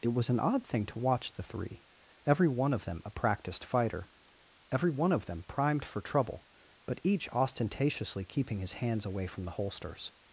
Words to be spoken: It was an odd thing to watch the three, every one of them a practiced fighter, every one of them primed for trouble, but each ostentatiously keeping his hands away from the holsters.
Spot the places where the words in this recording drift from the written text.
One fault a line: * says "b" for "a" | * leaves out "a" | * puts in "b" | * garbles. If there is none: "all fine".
all fine